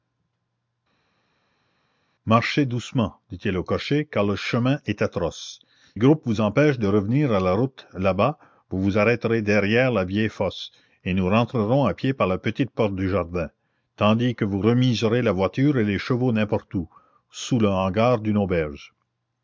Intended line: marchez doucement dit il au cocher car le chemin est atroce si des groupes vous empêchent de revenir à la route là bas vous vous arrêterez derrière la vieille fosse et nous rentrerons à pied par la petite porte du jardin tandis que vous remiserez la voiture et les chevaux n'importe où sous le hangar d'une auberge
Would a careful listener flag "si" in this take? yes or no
yes